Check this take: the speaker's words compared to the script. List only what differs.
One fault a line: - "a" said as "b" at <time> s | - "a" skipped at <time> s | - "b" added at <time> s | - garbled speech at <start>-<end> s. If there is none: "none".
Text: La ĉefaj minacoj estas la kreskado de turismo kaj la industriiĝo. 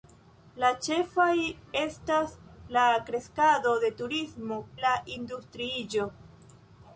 - "minacoj" skipped at 1.3 s
- "kaj" skipped at 4.6 s